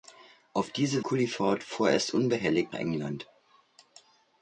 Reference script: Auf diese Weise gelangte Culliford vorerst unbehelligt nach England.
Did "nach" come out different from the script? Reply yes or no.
yes